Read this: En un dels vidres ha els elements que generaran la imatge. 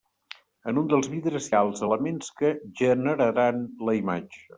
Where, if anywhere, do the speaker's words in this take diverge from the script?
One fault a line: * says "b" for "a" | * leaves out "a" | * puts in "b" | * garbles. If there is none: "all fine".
all fine